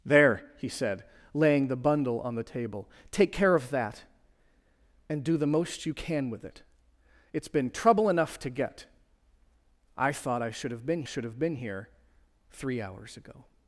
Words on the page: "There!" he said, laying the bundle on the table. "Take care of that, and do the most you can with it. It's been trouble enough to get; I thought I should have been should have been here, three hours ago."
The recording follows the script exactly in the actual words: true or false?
true